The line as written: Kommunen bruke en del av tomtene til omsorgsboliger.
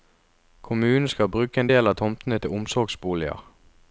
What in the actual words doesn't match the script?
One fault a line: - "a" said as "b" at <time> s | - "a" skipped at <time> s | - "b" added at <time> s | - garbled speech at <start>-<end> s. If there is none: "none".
- "skal" added at 1.1 s